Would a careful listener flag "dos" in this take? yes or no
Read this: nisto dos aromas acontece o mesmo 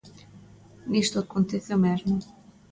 yes